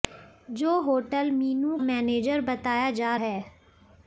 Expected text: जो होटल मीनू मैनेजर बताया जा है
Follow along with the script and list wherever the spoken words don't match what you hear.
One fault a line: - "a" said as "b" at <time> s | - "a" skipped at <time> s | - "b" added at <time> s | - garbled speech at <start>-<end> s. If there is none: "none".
none